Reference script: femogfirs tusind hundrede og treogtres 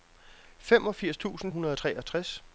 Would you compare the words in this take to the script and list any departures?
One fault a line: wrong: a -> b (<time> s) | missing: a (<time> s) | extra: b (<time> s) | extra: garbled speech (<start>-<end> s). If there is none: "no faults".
no faults